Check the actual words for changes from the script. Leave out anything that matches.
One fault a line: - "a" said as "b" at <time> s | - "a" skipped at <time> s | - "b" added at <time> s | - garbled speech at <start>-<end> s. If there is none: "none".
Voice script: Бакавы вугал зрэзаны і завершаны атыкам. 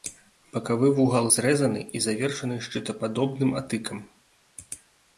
- "шчытападобным" added at 2.7 s